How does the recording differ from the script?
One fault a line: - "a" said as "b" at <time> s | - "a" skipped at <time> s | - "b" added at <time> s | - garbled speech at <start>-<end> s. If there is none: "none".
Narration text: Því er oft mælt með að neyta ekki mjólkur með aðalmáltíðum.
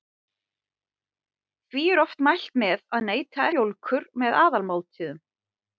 - "ekki" skipped at 3.5 s